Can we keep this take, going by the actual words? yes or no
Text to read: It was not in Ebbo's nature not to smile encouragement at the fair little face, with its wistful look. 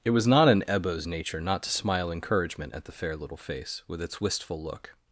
yes